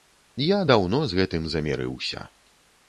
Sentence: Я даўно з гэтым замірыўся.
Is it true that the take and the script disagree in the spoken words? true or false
false